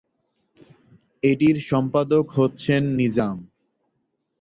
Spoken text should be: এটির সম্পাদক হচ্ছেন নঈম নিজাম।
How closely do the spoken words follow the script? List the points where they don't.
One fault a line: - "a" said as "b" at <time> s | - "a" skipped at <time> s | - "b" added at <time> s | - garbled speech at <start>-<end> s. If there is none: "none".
- "নঈম" skipped at 2.8 s